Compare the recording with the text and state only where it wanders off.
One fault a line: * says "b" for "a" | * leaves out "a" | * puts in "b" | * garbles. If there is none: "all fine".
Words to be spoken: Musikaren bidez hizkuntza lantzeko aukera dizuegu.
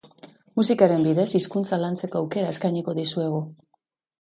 * puts in "eskainiko"